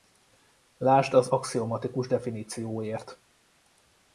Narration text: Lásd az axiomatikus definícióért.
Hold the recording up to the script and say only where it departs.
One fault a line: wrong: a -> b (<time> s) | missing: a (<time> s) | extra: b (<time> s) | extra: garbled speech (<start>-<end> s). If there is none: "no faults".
no faults